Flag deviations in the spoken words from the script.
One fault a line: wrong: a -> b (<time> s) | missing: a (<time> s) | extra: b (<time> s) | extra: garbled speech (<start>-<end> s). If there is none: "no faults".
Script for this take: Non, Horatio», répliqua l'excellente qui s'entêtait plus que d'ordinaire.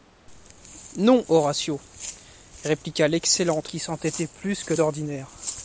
no faults